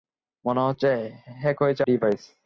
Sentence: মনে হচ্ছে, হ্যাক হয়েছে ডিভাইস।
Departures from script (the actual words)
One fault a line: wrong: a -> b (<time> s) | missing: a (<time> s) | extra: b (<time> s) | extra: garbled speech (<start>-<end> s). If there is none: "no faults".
no faults